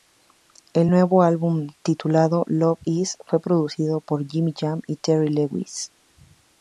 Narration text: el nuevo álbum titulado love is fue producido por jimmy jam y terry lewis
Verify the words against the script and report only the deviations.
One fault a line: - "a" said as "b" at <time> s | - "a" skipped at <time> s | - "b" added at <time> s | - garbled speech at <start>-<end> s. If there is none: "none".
none